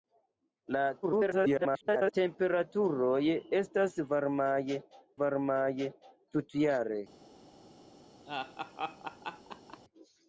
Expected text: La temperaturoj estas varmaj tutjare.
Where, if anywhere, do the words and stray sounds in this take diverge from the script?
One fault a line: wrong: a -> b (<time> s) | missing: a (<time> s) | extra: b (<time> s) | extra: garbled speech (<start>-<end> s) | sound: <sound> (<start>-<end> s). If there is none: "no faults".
extra: garbled speech (1.0-2.1 s)
extra: varmaj (5.2 s)
sound: laugh (8.3-9.8 s)